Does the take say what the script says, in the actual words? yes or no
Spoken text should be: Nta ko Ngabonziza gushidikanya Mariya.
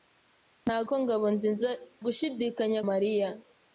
yes